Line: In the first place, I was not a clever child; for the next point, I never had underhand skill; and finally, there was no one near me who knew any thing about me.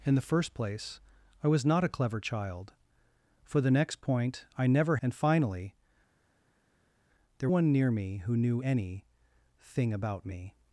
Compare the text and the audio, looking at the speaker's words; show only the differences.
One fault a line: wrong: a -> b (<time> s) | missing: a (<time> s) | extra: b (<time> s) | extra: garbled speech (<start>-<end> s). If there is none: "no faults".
missing: had underhand skill (5.0 s)
missing: was no (7.5 s)